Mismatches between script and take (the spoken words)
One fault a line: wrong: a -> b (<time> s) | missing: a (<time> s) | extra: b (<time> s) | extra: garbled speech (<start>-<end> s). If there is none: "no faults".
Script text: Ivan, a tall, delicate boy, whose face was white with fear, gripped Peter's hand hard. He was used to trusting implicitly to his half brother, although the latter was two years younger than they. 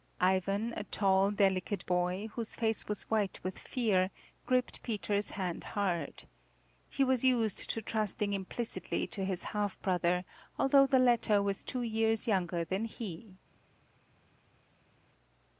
wrong: they -> he (12.8 s)